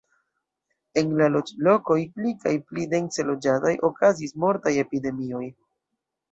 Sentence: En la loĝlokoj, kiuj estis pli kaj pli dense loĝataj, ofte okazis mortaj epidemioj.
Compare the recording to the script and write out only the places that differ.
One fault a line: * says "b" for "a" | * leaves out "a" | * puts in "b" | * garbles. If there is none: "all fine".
* leaves out "kiuj estis"
* leaves out "ofte"